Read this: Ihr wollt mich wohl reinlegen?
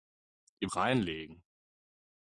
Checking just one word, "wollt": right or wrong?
wrong